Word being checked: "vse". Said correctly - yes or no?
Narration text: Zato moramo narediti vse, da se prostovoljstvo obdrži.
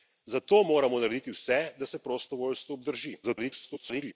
yes